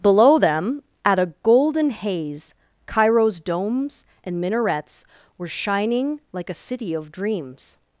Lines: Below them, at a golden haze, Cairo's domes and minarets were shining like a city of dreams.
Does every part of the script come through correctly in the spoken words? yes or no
yes